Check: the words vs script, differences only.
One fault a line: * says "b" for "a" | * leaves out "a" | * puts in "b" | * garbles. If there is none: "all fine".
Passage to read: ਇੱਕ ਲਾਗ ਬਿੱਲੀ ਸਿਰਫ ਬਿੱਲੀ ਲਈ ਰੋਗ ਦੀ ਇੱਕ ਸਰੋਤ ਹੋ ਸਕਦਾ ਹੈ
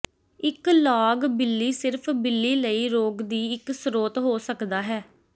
all fine